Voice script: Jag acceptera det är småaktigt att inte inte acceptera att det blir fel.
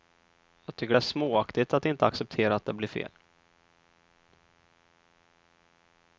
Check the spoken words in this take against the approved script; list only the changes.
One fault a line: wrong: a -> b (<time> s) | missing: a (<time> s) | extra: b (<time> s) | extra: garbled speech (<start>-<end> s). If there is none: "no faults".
wrong: acceptera -> tycker (0.8 s)
missing: inte (2.1 s)